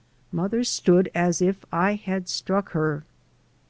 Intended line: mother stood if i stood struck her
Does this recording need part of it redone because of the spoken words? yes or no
yes